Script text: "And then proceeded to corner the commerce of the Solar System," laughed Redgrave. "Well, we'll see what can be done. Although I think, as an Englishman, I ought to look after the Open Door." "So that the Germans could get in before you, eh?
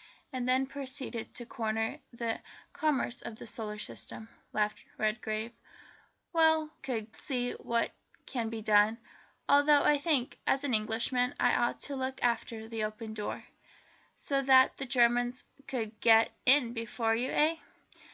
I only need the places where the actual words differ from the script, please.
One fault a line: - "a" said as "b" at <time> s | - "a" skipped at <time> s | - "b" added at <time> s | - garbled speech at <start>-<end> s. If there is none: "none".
- "we'll" said as "could" at 6.8 s